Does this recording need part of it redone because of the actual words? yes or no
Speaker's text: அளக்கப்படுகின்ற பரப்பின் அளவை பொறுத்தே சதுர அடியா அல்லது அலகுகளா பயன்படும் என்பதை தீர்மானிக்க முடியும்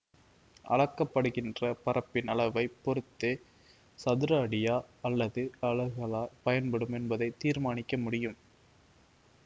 no